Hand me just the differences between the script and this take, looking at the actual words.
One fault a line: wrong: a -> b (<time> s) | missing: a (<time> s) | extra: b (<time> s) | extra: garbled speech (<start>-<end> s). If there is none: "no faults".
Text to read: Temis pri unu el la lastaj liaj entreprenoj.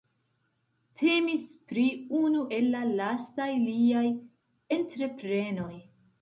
no faults